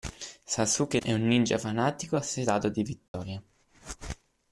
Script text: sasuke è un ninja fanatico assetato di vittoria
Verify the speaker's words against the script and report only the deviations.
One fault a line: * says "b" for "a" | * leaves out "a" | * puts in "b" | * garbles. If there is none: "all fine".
all fine